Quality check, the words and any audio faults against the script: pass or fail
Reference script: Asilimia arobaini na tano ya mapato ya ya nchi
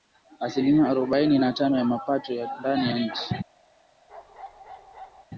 fail